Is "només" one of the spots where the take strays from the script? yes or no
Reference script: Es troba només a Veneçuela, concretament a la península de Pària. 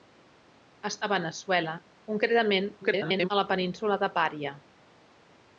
yes